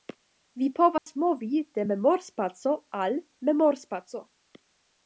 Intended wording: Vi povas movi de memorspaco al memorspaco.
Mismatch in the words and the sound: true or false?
true